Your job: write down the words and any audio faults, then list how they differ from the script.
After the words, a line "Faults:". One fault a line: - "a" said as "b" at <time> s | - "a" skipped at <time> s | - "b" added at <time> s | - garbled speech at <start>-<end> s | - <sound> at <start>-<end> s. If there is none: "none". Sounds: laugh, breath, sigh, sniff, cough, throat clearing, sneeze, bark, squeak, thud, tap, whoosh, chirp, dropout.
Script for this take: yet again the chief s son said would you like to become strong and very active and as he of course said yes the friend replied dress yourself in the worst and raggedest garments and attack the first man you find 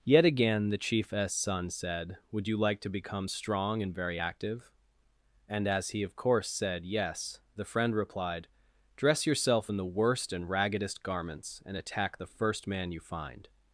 yet again the chief s son said would you like to become strong and very active and as he of course said yes the friend replied dress yourself in the worst and raggedest garments and attack the first man you find
Faults:
none